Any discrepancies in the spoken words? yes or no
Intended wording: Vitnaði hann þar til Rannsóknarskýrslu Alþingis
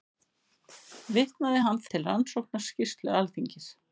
yes